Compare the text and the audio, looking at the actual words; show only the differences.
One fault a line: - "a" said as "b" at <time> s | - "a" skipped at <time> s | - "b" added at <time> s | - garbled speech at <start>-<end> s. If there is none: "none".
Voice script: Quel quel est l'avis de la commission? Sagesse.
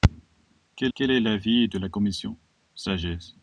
none